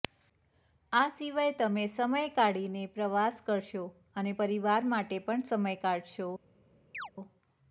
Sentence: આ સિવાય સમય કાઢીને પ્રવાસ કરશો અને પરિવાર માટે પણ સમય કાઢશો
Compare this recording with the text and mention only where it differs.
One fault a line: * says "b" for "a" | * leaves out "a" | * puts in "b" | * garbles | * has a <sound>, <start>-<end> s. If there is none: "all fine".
* puts in "તમે"
* has a chirp, 6.9-7.1 s